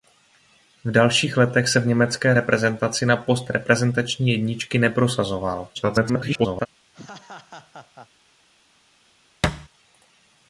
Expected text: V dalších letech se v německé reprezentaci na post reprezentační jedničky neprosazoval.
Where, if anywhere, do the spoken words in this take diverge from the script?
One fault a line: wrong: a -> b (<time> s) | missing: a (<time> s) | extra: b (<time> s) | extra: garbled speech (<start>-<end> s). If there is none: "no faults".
extra: garbled speech (5.7-6.7 s)